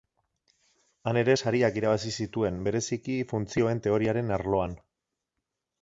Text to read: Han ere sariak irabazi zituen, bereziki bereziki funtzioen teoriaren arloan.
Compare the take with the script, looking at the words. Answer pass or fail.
fail